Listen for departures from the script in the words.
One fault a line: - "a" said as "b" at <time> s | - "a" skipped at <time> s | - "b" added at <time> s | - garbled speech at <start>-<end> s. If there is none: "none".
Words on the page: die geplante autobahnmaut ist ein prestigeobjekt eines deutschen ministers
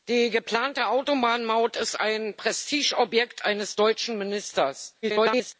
- garbled speech at 5.0-5.5 s